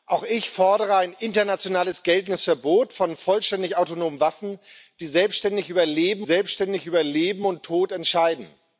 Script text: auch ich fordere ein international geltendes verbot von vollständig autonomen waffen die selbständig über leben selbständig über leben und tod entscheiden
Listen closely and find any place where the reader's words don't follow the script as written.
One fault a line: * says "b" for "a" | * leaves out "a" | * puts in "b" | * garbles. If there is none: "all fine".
all fine